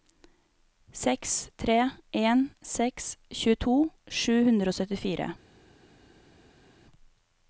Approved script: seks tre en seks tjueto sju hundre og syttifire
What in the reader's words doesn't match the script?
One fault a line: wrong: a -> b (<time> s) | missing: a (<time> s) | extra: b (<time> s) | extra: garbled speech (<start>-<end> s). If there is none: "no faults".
no faults